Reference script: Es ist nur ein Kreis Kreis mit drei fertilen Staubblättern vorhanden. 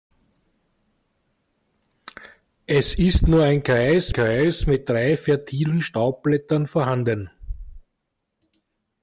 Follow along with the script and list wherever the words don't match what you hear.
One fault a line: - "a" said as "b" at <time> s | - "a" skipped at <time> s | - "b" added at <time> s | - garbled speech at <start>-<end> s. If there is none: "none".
none